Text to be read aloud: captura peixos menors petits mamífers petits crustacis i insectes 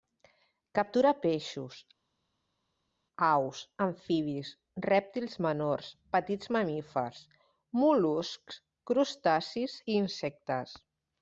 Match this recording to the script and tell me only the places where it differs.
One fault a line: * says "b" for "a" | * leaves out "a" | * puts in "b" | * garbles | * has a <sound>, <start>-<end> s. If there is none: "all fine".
* puts in "aus amfibis rèptils"
* says "mol·luscs" for "petits"